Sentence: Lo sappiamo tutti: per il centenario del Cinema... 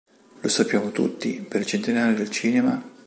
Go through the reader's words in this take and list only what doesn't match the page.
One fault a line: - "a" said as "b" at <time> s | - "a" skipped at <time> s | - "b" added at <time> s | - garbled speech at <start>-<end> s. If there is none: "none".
none